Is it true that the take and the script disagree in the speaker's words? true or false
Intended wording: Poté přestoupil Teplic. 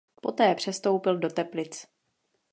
true